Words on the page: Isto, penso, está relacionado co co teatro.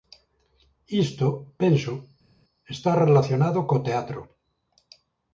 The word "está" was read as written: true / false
true